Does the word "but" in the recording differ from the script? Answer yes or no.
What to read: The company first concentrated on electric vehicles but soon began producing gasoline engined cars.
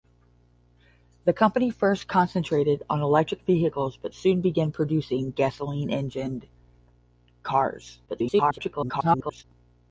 no